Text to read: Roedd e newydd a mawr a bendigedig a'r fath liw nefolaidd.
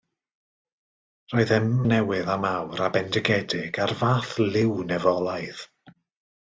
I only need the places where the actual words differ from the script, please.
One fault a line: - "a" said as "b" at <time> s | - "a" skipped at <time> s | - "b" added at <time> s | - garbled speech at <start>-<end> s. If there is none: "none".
none